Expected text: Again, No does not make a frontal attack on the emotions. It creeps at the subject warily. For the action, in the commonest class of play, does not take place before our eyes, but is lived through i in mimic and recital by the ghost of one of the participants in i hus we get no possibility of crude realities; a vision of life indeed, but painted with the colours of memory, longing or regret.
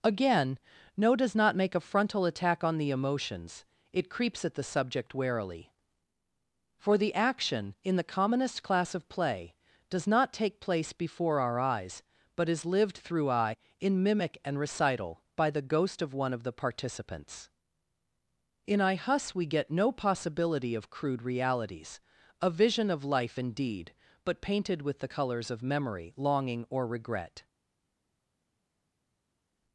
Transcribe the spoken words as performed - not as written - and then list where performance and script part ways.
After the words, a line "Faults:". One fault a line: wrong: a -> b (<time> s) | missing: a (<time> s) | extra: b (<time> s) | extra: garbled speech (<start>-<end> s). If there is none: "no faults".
Again, No does not make a frontal attack on the emotions. It creeps at the subject warily. For the action, in the commonest class of play, does not take place before our eyes, but is lived through i in mimic and recital by the ghost of one of the participants in i hus we get no possibility of crude realities; a vision of life indeed, but painted with the colours of memory, longing or regret.
Faults:
no faults